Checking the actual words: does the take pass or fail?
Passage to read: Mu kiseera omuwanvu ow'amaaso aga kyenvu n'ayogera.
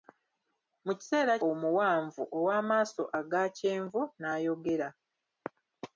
pass